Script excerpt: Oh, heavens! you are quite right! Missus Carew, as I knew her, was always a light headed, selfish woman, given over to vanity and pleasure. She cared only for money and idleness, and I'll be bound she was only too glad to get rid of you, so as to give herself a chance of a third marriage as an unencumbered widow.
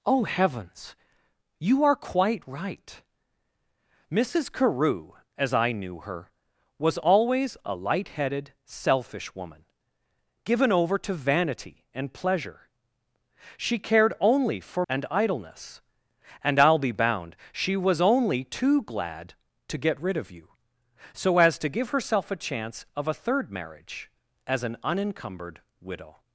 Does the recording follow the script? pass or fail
fail